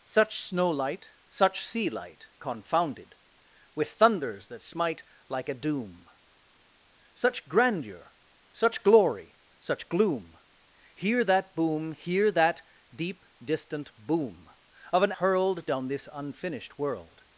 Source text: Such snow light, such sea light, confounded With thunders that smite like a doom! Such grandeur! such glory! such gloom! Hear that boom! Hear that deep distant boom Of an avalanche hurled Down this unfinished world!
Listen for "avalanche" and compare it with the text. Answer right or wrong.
wrong